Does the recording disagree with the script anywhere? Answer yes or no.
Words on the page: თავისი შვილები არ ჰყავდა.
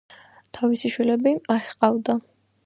no